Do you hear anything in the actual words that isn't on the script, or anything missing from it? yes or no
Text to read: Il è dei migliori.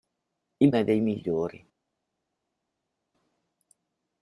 no